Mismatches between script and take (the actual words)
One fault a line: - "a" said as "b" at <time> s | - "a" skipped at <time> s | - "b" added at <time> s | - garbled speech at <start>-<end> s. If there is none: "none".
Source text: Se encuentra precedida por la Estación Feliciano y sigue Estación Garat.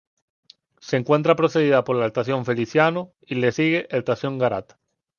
- "le" added at 3.3 s